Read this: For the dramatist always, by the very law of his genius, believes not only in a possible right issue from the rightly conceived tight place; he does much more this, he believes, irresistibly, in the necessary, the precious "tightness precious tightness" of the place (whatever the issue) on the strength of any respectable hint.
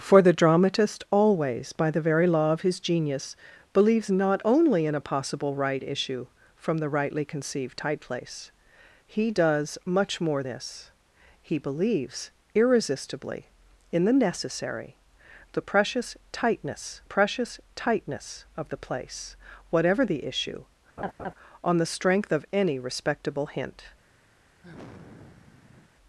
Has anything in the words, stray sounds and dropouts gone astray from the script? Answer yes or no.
yes